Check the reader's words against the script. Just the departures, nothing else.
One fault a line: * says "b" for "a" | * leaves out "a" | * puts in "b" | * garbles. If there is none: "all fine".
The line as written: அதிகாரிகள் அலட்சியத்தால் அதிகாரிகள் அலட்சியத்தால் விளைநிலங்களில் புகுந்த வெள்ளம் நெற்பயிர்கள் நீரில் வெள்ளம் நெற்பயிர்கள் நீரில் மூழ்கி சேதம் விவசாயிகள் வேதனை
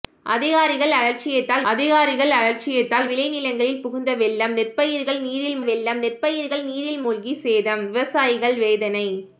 all fine